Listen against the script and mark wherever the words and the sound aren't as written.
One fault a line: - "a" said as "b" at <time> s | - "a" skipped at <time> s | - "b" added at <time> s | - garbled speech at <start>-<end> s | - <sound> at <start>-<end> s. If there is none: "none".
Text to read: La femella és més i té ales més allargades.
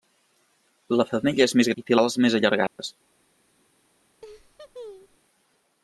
- dropout at 2.7-2.8 s
- laugh at 4.2-5.2 s